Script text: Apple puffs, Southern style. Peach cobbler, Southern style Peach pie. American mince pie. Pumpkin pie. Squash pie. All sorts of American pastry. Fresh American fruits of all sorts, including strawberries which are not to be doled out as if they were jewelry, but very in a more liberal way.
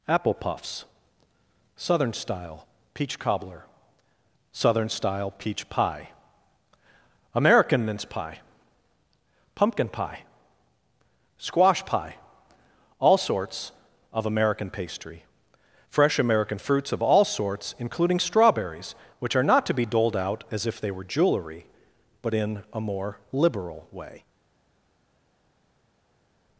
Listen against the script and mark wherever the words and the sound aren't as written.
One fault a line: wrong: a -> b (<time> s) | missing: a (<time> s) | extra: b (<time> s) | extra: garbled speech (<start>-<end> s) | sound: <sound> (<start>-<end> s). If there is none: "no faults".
missing: very (22.3 s)